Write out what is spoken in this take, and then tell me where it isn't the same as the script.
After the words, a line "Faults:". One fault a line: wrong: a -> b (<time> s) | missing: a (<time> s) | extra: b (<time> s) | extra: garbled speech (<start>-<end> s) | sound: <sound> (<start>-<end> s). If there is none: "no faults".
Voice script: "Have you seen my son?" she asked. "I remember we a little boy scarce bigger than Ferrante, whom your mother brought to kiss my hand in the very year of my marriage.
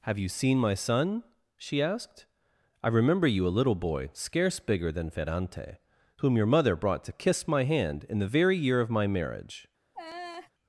"Have you seen my son?" she asked. "I remember you a little boy scarce bigger than Ferrante, whom your mother brought to kiss my hand in the very year of my marriage.
Faults:
wrong: we -> you (3.3 s)
sound: laugh (9.9-10.5 s)